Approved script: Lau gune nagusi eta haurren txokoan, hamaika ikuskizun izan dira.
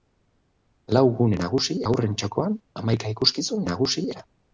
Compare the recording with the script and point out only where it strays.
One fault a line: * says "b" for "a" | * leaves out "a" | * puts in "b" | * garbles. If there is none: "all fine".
* leaves out "eta"
* says "nagusi" for "izan"